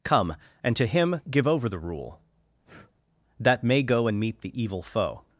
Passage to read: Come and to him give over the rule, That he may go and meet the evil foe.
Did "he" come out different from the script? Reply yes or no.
yes